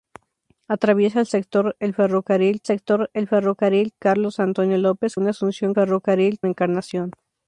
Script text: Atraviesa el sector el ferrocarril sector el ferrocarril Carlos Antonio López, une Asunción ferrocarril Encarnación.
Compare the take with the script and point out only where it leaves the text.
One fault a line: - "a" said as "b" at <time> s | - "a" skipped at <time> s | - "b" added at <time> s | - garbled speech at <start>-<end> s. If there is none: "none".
none